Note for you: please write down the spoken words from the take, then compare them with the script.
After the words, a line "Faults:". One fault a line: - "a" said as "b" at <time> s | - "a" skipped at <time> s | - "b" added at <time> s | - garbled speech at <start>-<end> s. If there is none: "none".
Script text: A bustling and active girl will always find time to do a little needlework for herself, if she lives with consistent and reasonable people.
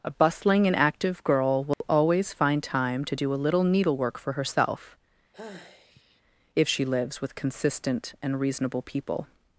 A bustling and active girl will always find time to do a little needlework for herself, if she lives with consistent and reasonable people.
Faults:
none